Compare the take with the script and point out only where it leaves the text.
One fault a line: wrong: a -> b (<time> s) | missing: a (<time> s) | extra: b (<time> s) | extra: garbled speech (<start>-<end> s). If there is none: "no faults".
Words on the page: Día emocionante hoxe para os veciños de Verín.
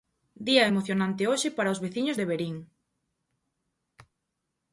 no faults